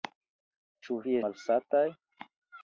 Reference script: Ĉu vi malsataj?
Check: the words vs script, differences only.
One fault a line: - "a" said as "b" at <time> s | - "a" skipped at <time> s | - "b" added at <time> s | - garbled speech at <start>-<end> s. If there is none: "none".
none